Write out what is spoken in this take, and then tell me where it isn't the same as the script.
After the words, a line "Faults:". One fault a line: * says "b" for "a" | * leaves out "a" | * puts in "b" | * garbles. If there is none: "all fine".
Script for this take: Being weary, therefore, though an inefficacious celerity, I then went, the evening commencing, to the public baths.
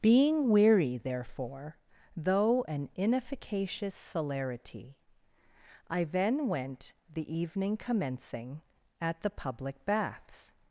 Being weary, therefore, though an inefficacious celerity, I then went, the evening commencing, at the public baths.
Faults:
* says "at" for "to"